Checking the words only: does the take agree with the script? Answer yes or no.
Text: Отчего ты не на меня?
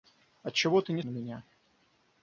yes